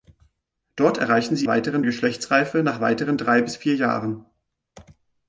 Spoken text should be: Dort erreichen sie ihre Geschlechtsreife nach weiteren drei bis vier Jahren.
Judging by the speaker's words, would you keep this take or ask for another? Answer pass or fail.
fail